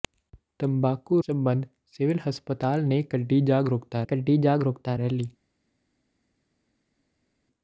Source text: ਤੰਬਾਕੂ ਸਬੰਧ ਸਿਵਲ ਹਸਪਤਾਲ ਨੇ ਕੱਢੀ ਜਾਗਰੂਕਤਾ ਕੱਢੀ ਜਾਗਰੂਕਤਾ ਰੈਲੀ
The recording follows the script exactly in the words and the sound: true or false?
true